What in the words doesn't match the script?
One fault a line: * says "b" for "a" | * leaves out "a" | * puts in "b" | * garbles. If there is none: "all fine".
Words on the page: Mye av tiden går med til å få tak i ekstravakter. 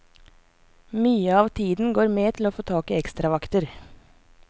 all fine